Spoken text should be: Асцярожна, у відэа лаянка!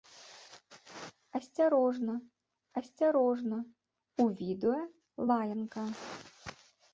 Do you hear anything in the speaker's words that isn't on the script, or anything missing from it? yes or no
yes